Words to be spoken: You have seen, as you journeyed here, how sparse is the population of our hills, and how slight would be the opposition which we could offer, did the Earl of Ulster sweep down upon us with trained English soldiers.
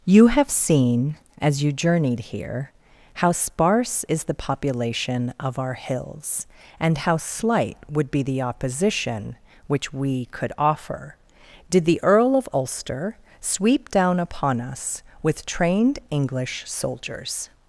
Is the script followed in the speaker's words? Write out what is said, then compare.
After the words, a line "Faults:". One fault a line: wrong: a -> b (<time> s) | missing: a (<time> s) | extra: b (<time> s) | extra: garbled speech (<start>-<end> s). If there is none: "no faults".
You have seen, as you journeyed here, how sparse is the population of our hills, and how slight would be the opposition which we could offer, did the Earl of Ulster sweep down upon us with trained English soldiers.
Faults:
no faults